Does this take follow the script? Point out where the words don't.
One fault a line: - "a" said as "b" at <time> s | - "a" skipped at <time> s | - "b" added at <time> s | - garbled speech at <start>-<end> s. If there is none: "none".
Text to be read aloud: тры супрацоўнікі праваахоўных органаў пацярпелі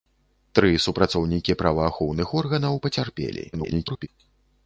- garbled speech at 3.5-4.1 s